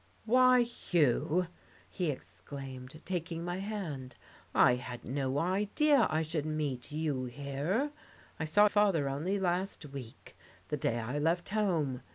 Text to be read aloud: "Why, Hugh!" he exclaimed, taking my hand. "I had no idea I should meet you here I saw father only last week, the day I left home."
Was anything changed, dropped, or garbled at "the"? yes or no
no